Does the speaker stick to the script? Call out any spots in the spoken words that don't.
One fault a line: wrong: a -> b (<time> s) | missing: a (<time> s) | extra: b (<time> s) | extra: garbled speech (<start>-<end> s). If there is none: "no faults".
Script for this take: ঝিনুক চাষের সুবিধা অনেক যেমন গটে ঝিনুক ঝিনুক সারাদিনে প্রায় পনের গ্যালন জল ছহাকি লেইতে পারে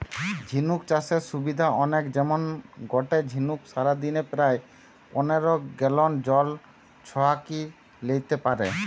missing: ঝিনুক (3.6 s)